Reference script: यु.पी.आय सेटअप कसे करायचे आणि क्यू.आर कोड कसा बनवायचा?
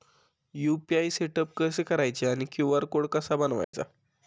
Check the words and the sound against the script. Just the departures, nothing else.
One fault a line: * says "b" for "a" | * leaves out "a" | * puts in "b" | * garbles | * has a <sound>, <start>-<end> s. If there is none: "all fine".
* has a dropout, 3.6-3.7 s